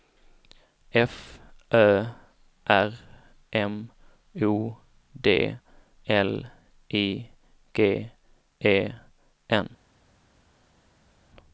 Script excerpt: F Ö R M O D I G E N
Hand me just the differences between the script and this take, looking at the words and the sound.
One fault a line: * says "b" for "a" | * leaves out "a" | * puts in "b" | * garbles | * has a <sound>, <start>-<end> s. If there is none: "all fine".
* puts in "L"